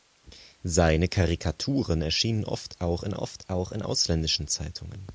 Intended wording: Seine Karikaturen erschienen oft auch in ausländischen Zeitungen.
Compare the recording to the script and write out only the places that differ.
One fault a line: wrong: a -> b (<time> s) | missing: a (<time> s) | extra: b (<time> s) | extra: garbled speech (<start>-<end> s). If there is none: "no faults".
extra: oft auch in (3.1 s)